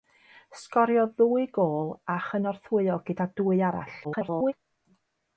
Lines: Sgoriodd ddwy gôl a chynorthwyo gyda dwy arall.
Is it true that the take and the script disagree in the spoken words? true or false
true